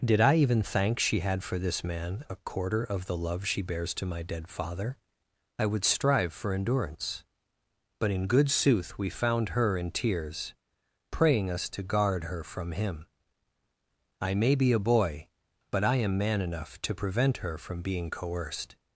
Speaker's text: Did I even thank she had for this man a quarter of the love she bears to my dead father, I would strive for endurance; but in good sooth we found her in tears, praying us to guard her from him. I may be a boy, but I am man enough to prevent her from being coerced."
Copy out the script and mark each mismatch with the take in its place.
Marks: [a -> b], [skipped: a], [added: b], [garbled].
Did I even thank she had for this man a quarter of the love she bears to my dead father, I would strive for endurance; but in good sooth we found her in tears, praying us to guard her from him. I may be a boy, but I am man enough to prevent her from being coerced."